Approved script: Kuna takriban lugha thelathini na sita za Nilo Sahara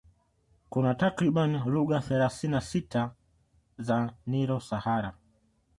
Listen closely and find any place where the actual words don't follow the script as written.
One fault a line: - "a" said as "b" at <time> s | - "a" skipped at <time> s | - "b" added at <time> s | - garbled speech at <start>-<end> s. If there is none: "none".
none